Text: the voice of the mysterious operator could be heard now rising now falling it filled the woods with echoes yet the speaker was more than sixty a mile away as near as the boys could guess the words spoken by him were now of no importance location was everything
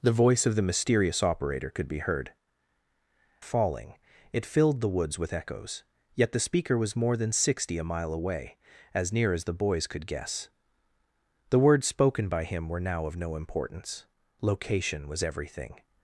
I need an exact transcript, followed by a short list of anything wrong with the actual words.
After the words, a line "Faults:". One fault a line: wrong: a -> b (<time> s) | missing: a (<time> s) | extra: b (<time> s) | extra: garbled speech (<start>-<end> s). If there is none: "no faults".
the voice of the mysterious operator could be heard falling it filled the woods with echoes yet the speaker was more than sixty a mile away as near as the boys could guess the words spoken by him were now of no importance location was everything
Faults:
missing: now rising now (2.3 s)